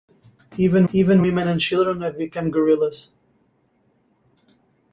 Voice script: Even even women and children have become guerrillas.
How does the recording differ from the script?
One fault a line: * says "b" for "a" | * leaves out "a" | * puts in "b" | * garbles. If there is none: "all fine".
all fine